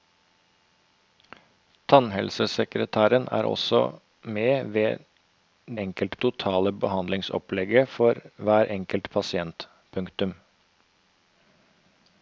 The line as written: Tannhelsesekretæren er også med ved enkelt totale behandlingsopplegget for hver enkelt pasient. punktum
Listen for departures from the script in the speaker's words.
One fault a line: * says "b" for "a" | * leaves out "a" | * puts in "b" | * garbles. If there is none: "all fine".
all fine